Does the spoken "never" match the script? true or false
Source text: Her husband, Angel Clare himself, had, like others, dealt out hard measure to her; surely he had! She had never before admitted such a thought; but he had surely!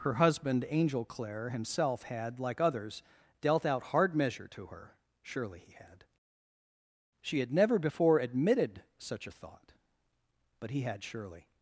true